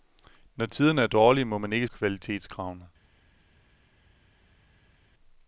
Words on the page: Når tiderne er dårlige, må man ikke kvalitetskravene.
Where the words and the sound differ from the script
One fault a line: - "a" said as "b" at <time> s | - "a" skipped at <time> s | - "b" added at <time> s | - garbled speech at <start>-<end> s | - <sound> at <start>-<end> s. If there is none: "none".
none